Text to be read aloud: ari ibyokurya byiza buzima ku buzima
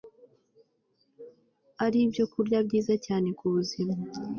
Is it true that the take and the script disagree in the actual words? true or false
true